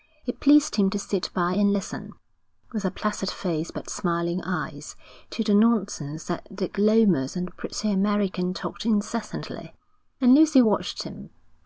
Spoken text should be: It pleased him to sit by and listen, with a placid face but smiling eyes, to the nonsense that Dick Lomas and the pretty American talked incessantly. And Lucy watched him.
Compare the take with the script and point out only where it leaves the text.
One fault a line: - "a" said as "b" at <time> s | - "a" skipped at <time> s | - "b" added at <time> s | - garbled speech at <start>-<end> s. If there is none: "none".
none